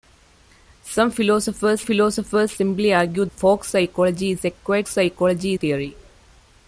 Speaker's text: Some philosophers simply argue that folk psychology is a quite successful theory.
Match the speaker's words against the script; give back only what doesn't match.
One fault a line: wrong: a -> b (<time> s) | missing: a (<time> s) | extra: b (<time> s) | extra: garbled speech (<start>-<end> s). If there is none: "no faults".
extra: philosophers (1.8 s)
missing: that (3.2 s)
wrong: successful -> psychology (4.9 s)